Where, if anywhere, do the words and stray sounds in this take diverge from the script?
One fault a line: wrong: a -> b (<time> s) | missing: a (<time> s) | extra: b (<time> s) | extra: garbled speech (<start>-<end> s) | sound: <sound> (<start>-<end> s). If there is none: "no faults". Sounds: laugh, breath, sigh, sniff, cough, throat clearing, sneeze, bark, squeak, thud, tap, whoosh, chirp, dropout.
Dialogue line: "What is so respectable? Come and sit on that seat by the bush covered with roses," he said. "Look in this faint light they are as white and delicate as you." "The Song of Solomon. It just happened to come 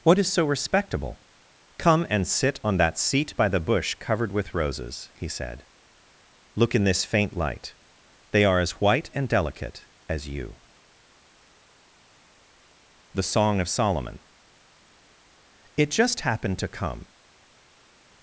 no faults